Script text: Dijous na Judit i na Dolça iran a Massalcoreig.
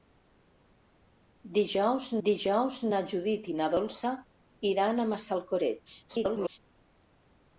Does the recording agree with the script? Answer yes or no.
no